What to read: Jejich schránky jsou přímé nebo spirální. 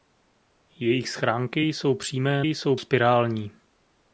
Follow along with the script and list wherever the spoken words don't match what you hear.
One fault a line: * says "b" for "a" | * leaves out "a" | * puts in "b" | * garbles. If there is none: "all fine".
* says "jsou" for "nebo"